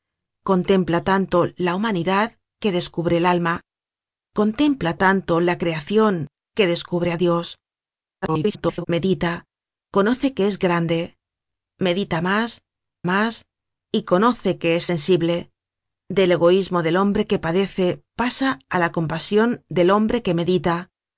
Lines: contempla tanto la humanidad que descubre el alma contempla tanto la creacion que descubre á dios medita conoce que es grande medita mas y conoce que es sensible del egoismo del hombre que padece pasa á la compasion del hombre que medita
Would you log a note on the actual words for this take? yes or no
yes